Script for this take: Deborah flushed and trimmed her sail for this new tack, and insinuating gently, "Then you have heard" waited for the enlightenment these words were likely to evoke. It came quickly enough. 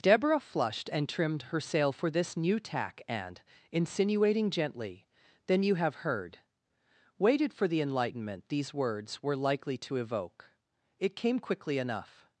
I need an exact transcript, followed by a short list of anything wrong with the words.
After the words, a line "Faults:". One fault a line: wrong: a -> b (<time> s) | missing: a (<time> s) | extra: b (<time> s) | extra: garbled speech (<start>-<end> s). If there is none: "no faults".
Deborah flushed and trimmed her sail for this new tack, and insinuating gently, "Then you have heard" waited for the enlightenment these words were likely to evoke. It came quickly enough.
Faults:
no faults